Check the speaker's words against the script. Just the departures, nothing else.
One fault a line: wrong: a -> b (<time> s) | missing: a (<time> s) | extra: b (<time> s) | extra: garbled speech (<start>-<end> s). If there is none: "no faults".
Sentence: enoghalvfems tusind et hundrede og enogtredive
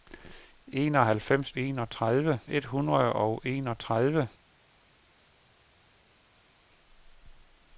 wrong: tusind -> enogtredive (1.6 s)